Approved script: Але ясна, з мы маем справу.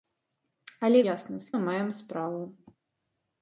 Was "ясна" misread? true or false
false